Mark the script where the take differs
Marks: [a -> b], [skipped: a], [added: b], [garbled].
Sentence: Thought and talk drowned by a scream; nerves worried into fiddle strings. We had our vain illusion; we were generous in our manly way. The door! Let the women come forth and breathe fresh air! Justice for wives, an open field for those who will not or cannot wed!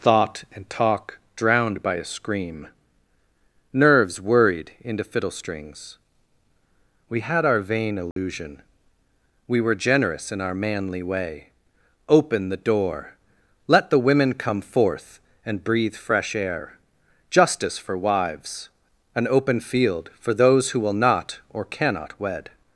Thought and talk drowned by a scream; nerves worried into fiddle strings. We had our vain illusion; we were generous in our manly way. [added: Open] The door! Let the women come forth and breathe fresh air! Justice for wives, an open field for those who will not or cannot wed!